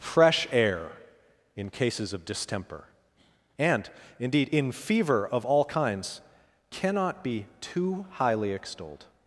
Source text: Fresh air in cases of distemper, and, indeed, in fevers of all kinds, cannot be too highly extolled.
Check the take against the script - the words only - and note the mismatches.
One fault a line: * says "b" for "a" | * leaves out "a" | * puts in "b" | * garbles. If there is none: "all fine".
* says "fever" for "fevers"